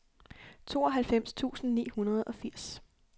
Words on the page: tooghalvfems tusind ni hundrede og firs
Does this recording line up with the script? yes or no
yes